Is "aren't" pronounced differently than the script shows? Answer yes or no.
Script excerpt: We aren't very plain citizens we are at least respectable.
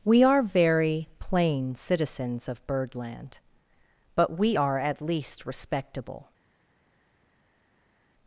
yes